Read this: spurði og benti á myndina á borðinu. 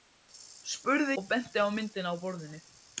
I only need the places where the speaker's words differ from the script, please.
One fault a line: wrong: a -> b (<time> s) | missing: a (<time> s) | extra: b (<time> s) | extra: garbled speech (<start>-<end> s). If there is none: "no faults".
no faults